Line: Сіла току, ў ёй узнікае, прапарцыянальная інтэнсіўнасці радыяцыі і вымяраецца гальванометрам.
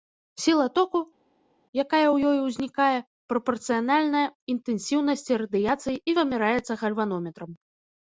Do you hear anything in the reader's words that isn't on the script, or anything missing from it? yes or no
yes